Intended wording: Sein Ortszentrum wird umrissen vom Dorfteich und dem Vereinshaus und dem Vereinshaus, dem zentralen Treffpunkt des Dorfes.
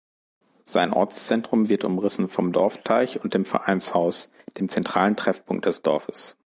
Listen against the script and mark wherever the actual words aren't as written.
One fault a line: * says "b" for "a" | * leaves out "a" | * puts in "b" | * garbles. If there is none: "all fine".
* leaves out "und dem Vereinshaus"